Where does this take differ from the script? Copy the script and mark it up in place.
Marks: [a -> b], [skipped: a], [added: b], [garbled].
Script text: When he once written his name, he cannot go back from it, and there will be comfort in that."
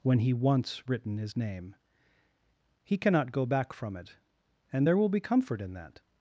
When he once written his name, he cannot go back from it, and there will be comfort in that."